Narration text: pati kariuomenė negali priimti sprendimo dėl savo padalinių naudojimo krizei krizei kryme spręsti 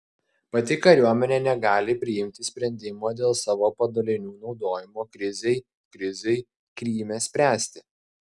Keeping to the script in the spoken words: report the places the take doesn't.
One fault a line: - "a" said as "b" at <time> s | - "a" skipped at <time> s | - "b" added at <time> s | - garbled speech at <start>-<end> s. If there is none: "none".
none